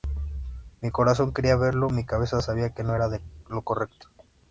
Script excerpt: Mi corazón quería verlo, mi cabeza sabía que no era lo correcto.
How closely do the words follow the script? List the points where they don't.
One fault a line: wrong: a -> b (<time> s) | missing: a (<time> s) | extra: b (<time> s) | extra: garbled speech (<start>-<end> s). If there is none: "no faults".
no faults